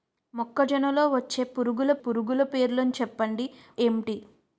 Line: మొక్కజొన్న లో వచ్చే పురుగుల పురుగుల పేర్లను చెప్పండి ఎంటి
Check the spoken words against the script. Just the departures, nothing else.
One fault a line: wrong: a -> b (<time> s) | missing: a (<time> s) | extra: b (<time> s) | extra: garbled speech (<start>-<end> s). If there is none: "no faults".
no faults